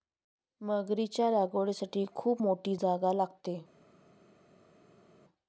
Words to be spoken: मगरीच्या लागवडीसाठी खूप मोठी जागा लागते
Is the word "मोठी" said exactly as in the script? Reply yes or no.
yes